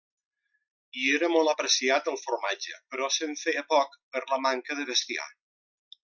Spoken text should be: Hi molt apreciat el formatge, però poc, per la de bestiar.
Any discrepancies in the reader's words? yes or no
yes